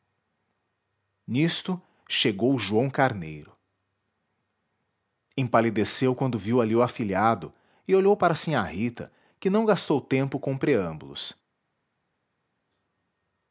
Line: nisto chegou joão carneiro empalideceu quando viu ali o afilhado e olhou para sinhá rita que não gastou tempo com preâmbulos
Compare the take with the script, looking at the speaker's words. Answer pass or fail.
pass